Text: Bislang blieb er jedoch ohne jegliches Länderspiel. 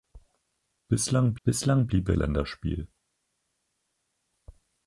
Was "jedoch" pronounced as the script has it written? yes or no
no